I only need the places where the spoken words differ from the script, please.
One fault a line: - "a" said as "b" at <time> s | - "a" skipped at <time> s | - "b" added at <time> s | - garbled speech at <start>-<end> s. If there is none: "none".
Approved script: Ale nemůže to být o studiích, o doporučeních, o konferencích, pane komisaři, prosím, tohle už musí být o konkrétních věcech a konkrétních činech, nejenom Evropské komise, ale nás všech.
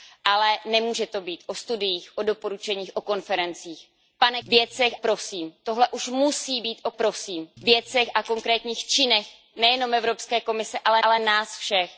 - "komisaři" said as "věcech" at 4.5 s
- "konkrétních" said as "prosím" at 6.9 s
- "ale" added at 11.0 s